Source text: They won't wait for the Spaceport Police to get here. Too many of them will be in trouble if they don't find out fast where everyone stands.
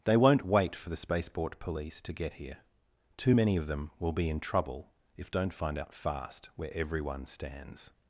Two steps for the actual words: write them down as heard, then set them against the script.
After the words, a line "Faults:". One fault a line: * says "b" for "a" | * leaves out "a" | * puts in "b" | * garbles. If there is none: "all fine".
They won't wait for the Spaceport Police to get here. Too many of them will be in trouble if don't find out fast where everyone stands.
Faults:
* leaves out "they"